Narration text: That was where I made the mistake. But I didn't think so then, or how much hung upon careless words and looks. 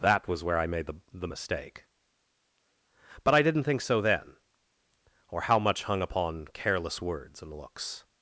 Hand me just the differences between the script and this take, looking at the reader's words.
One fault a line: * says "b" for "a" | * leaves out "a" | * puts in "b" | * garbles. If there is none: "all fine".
* puts in "the"